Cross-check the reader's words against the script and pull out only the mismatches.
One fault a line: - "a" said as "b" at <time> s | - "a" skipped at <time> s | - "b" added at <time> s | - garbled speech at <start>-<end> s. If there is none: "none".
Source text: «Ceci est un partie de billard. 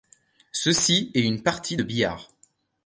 - "un" said as "une" at 1.2 s